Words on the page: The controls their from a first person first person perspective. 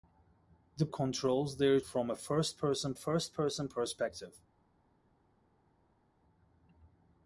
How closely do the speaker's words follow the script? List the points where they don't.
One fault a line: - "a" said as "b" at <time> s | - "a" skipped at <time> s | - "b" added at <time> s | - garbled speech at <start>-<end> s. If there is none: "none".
none